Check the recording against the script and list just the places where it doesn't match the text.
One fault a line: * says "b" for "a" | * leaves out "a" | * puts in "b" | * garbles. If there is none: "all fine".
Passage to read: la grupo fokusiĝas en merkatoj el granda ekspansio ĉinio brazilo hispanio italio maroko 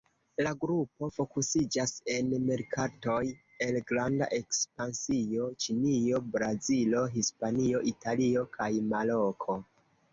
* puts in "kaj"